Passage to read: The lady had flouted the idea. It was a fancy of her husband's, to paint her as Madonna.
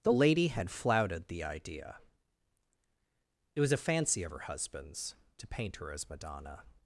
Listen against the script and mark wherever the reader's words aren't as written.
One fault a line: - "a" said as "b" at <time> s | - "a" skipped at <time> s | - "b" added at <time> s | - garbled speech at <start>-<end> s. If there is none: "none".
none